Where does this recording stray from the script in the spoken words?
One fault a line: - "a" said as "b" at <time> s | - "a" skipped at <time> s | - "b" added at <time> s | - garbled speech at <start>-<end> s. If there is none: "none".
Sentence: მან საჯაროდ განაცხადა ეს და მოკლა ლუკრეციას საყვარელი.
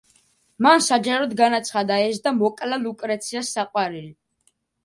none